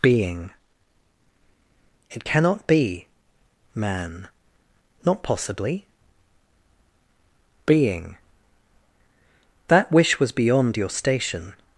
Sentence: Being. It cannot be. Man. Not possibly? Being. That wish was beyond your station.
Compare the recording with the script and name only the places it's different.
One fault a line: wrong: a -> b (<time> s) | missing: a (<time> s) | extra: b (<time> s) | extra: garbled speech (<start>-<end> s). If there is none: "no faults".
no faults